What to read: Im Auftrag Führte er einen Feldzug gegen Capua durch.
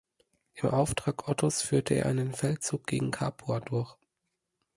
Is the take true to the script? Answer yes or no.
no